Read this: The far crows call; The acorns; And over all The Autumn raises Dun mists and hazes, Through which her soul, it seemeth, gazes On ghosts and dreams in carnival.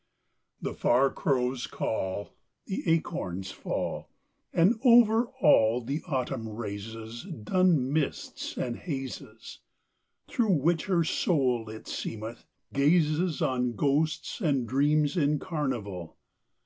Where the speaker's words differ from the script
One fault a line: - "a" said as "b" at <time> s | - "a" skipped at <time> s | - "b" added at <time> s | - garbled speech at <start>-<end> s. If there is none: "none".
- "fall" added at 3.5 s